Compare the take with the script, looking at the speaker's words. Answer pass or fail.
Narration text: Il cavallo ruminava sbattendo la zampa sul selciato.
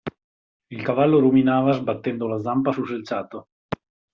pass